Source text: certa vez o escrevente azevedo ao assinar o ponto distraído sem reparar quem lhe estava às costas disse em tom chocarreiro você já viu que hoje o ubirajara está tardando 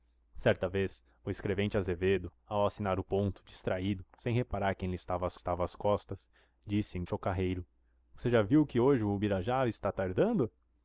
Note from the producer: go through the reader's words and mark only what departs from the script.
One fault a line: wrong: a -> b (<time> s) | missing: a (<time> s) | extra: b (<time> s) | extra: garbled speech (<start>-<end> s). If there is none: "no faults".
extra: estava às (5.3 s)
missing: tom (7.0 s)